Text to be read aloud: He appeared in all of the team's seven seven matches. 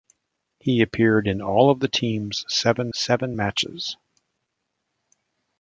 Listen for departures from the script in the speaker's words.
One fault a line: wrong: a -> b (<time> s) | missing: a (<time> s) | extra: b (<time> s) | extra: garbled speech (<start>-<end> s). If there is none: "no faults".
no faults